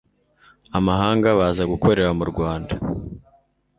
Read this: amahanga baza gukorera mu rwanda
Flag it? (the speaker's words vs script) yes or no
no